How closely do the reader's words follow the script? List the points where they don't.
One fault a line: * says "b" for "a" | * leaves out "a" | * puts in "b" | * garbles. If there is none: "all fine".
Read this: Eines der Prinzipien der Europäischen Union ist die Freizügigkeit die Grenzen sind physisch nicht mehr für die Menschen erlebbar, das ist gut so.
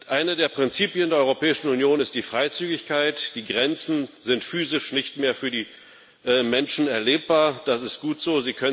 all fine